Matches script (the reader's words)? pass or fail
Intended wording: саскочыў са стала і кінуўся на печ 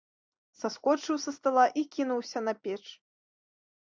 pass